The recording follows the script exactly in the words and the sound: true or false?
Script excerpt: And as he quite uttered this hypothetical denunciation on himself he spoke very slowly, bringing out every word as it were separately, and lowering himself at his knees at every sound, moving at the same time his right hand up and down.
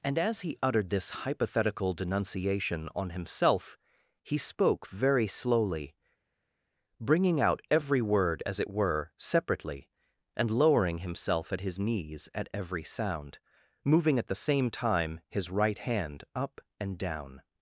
false